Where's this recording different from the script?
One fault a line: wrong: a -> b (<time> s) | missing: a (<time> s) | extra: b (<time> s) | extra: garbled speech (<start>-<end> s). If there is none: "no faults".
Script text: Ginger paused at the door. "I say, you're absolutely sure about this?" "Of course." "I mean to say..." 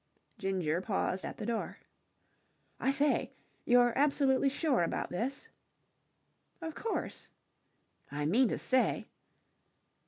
no faults